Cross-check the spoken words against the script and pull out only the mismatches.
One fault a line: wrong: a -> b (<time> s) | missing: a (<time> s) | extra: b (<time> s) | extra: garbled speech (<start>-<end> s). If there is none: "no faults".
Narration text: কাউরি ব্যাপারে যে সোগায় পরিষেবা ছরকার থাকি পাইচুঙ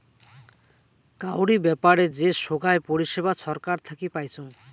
no faults